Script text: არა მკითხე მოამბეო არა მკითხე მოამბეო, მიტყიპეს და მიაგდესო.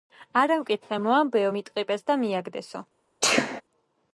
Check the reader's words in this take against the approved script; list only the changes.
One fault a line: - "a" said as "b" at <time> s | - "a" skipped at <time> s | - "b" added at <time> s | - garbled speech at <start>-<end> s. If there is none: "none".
- "არა მკითხე მოამბეო" skipped at 1.5 s